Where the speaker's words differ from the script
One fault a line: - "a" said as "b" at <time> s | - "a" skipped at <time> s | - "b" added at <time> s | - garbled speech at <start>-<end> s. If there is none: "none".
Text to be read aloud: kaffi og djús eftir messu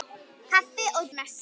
- "djús eftir" skipped at 1.1 s